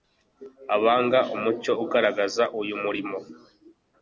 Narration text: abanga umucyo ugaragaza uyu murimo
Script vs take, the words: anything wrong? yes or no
no